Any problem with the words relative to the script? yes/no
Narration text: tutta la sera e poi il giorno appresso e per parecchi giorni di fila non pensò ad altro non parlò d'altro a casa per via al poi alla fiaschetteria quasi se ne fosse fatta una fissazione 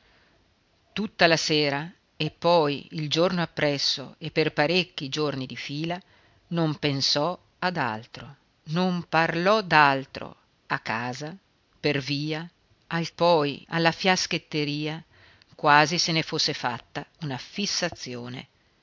no